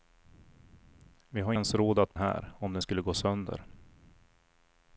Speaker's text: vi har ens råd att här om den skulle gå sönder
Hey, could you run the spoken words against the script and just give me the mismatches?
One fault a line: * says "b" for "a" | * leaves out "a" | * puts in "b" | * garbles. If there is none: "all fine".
all fine